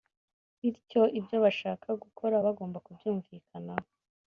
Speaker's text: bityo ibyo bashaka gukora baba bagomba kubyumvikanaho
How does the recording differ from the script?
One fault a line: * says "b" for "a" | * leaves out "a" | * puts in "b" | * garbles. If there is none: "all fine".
* leaves out "baba"